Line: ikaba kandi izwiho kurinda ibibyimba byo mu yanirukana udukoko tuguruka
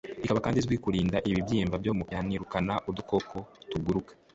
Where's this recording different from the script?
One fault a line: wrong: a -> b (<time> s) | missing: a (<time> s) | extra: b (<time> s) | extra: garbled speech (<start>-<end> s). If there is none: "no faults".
no faults